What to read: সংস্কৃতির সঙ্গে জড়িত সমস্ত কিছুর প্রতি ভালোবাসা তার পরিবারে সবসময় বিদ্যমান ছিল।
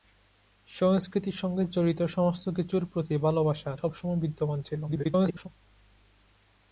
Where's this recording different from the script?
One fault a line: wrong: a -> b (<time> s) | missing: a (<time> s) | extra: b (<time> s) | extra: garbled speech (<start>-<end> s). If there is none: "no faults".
missing: তার পরিবারে (3.7 s)
extra: garbled speech (4.9-5.5 s)